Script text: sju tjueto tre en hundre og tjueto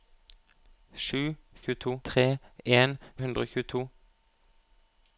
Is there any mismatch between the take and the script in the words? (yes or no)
no